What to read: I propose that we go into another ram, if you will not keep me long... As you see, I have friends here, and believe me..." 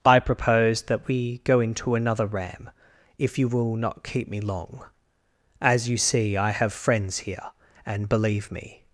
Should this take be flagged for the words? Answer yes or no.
no